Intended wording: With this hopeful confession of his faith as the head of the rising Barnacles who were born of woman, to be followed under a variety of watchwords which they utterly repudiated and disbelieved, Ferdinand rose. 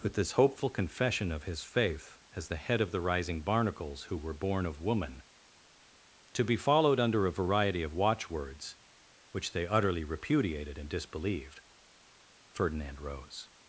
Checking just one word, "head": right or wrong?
right